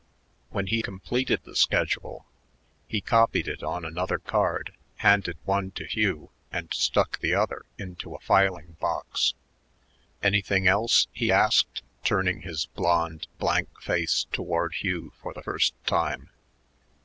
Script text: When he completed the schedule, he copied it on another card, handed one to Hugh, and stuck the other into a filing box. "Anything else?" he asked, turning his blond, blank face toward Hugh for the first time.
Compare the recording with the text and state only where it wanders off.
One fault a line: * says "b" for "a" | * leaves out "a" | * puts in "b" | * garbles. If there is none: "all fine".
all fine